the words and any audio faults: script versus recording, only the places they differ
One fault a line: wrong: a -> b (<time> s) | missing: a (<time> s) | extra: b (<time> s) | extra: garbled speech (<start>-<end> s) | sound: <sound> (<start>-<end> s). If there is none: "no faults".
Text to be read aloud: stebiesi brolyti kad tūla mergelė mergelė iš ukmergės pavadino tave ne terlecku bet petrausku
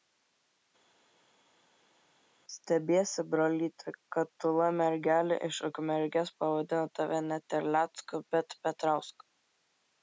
missing: mergelė (5.4 s)